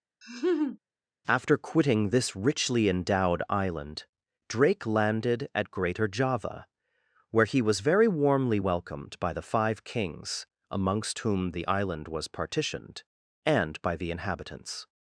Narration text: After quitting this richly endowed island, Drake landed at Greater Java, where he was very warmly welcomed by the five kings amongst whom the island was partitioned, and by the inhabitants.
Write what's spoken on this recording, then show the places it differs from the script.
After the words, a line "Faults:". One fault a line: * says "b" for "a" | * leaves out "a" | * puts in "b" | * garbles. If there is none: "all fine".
After quitting this richly endowed island, Drake landed at Greater Java, where he was very warmly welcomed by the five kings amongst whom the island was partitioned, and by the inhabitants.
Faults:
all fine